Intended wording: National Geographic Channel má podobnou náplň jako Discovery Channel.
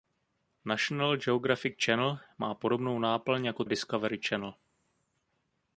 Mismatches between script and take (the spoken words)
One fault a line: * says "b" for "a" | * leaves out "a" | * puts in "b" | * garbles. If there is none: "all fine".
all fine